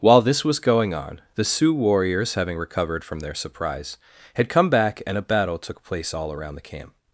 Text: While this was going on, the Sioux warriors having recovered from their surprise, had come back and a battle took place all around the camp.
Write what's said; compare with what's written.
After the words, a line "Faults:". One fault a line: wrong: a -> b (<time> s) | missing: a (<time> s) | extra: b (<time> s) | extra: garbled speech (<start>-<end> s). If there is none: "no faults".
While this was going on, the Sioux warriors having recovered from their surprise, had come back and a battle took place all around the camp.
Faults:
no faults